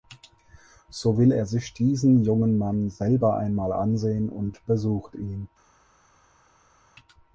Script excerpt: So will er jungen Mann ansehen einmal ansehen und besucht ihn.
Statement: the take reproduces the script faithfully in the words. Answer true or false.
false